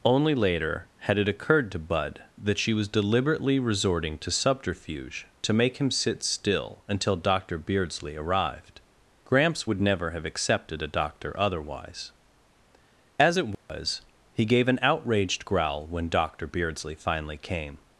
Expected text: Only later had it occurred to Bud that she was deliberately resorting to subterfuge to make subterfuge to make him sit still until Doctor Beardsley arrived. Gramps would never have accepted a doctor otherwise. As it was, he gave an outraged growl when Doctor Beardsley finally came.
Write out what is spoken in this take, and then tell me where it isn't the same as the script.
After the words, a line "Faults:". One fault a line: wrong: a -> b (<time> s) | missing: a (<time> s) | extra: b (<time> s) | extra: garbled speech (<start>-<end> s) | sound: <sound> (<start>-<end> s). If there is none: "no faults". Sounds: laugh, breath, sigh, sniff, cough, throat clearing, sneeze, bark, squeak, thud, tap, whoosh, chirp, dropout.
Only later had it occurred to Bud that she was deliberately resorting to subterfuge to make him sit still until Doctor Beardsley arrived. Gramps would never have accepted a doctor otherwise. As it was, he gave an outraged growl when Doctor Beardsley finally came.
Faults:
missing: subterfuge to make (5.8 s)
sound: dropout (13.5-13.7 s)